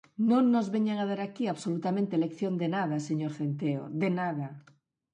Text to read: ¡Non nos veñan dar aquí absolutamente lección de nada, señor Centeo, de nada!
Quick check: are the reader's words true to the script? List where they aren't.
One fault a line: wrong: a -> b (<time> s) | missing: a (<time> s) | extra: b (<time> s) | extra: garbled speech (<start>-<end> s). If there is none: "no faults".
no faults